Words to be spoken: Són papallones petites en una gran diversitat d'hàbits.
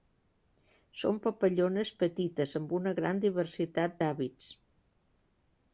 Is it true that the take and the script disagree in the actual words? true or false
true